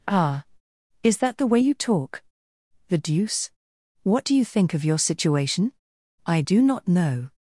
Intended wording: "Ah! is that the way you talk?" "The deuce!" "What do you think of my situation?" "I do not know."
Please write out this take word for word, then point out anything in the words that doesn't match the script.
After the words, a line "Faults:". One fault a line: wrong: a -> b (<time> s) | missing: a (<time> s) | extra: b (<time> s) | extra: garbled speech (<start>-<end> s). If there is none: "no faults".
"Ah! is that the way you talk?" "The deuce!" "What do you think of your situation?" "I do not know."
Faults:
wrong: my -> your (4.8 s)